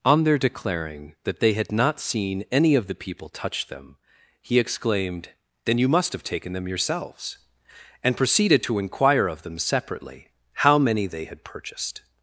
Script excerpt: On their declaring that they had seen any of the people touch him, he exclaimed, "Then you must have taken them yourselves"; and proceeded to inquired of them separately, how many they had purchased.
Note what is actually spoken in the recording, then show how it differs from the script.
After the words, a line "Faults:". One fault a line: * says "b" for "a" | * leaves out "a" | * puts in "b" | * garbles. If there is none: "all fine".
On their declaring that they had not seen any of the people touch them, he exclaimed, "Then you must have taken them yourselves"; and proceeded to inquire of them separately, how many they had purchased.
Faults:
* puts in "not"
* says "them" for "him"
* says "inquire" for "inquired"